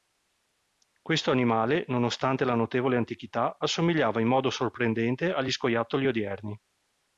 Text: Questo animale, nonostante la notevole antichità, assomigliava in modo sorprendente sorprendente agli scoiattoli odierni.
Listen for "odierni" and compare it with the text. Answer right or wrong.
right